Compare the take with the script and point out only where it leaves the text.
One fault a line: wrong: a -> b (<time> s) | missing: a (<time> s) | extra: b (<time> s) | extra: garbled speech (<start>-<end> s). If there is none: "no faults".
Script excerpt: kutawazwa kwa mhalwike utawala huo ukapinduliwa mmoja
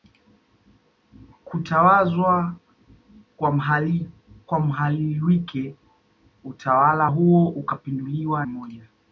no faults